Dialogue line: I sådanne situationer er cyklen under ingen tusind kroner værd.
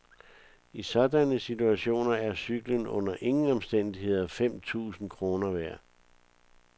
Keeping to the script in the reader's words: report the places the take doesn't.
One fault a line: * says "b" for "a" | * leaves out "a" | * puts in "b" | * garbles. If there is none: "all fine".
* puts in "omstændigheder fem"